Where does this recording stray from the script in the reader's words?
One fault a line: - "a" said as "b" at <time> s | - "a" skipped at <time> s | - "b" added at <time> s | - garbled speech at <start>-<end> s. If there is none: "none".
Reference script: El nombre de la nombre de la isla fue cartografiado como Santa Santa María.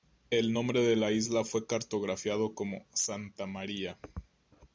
- "nombre de la" skipped at 1.1 s
- "Santa" skipped at 3.5 s